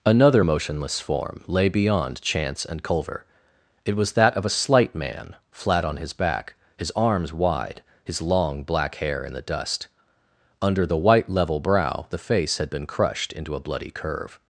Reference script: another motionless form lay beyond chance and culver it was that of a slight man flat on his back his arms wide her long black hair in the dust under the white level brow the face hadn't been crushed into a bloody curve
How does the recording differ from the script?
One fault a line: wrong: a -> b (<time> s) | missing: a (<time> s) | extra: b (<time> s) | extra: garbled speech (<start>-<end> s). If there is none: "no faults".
wrong: her -> his (8.0 s)
wrong: hadn't -> had (12.6 s)